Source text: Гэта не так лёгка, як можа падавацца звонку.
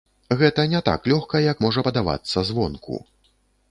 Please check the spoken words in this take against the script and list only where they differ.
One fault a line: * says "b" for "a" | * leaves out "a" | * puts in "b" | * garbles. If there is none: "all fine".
all fine